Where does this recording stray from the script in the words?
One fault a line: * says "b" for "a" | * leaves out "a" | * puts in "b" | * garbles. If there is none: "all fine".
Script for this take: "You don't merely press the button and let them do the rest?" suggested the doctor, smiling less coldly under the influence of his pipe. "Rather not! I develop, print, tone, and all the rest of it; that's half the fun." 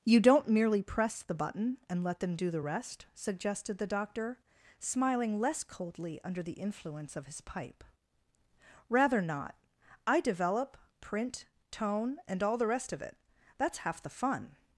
all fine